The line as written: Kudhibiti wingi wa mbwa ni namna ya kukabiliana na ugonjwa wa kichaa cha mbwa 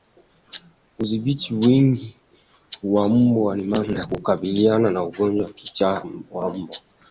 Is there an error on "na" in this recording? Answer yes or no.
no